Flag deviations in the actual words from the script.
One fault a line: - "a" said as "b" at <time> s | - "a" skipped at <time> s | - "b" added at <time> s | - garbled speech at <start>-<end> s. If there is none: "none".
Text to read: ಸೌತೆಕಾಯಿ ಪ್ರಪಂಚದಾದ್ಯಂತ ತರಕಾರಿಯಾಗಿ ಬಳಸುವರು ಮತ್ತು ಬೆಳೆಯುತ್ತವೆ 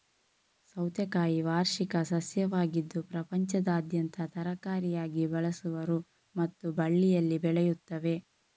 - "ವಾರ್ಷಿಕ ಸಸ್ಯವಾಗಿದ್ದು" added at 1.5 s
- "ಬಳ್ಳಿಯಲ್ಲಿ" added at 6.8 s